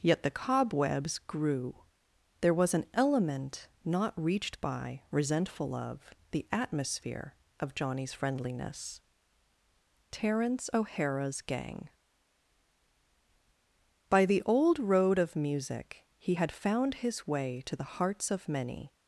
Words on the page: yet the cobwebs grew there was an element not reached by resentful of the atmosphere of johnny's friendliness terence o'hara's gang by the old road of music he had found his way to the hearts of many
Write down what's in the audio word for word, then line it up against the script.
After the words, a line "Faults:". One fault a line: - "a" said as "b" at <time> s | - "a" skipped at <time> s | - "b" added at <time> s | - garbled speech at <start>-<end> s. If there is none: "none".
yet the cobwebs grew there was an element not reached by resentful of the atmosphere of johnny's friendliness terence o'hara's gang by the old road of music he had found his way to the hearts of many
Faults:
none